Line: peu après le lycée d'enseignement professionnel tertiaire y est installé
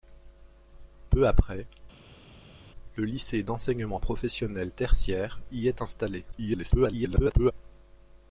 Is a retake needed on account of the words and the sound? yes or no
yes